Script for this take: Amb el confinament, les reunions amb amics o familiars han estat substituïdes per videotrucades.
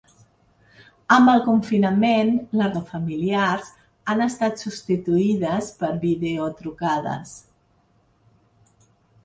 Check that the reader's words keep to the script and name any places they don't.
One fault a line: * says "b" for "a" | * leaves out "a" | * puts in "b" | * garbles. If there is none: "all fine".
* leaves out "reunions amb amics"